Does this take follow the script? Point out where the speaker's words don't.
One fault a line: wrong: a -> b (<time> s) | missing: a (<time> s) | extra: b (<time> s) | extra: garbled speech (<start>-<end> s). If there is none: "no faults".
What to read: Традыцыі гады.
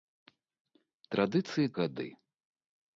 no faults